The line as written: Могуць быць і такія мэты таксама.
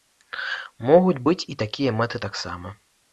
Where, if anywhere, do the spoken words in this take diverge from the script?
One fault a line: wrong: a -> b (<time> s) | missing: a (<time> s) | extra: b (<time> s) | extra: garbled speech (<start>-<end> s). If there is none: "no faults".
no faults